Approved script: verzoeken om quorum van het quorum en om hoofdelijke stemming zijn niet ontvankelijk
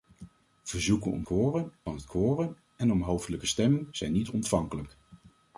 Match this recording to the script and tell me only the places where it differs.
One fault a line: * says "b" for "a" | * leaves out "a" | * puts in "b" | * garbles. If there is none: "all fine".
all fine